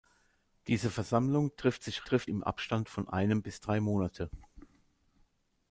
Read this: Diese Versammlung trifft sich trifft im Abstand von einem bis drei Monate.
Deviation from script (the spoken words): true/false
false